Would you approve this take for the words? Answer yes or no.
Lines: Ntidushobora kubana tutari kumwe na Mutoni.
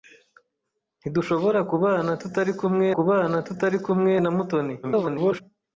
no